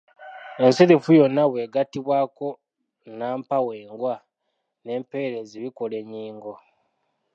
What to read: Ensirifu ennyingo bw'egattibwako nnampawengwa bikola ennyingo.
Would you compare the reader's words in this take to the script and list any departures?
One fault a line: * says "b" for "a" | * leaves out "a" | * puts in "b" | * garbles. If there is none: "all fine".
* says "yonna" for "ennyingo"
* puts in "n'empeerezi"